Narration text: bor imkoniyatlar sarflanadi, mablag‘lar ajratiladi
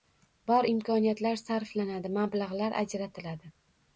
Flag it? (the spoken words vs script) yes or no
no